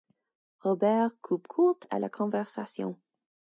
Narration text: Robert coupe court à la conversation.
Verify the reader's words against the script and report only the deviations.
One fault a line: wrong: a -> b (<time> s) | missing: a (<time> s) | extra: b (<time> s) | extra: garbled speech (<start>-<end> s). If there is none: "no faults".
no faults